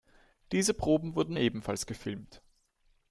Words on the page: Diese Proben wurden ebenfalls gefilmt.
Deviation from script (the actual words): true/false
false